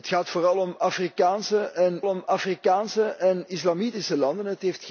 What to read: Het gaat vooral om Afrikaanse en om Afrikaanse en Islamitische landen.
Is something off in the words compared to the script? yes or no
no